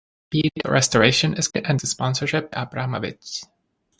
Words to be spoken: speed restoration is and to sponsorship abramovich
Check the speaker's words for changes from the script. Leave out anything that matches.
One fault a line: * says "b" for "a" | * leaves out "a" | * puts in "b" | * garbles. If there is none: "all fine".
all fine